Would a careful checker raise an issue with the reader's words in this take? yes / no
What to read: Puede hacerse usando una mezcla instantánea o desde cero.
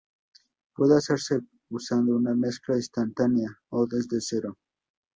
no